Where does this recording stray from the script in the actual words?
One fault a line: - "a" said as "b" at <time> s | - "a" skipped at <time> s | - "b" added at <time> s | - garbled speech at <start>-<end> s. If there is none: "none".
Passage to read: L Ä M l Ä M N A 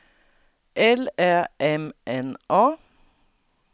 - "l Ä M" skipped at 1.8 s